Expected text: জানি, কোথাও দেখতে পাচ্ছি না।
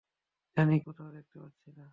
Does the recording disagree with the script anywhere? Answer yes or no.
no